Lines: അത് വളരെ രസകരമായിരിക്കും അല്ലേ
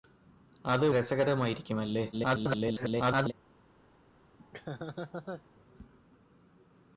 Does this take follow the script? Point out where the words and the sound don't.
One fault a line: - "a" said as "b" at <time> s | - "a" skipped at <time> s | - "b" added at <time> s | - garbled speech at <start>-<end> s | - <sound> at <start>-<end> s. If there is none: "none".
- "വളരെ" skipped at 0.9 s
- garbled speech at 2.1-3.3 s
- laugh at 4.4-5.4 s